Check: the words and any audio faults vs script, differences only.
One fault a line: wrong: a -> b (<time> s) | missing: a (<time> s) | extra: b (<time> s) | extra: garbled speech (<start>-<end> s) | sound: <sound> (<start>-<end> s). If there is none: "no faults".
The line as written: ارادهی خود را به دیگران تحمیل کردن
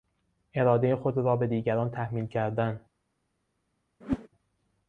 sound: whoosh (4.0-4.3 s)